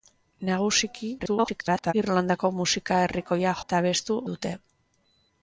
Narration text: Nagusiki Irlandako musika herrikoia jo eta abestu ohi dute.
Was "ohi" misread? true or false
true